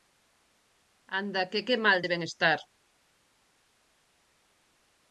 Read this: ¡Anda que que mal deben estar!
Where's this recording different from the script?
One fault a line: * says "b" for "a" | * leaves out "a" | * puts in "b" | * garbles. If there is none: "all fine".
all fine